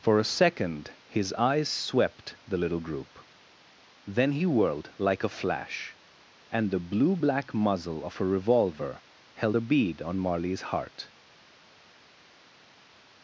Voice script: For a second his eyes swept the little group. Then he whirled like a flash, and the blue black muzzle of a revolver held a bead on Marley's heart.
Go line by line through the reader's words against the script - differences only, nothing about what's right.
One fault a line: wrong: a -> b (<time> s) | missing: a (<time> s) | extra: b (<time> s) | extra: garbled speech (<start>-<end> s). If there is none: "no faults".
no faults